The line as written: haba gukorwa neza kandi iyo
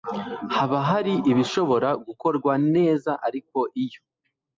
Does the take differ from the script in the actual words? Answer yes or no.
yes